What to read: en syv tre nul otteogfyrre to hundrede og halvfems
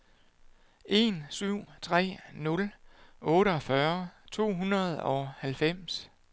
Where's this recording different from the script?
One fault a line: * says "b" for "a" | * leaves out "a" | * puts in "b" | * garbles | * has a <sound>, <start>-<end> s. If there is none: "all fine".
all fine